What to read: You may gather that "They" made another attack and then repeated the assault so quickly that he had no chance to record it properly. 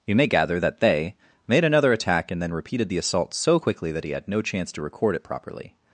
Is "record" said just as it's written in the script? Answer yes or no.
yes